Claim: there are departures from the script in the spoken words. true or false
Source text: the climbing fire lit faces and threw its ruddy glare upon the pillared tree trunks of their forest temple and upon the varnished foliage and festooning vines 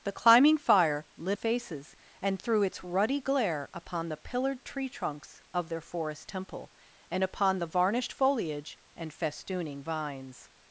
false